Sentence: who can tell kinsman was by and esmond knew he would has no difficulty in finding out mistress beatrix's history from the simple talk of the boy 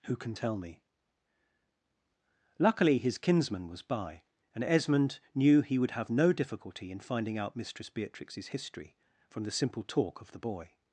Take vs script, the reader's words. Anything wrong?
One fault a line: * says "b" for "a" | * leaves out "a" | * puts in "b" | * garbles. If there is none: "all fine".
* puts in "me luckily his"
* says "have" for "has"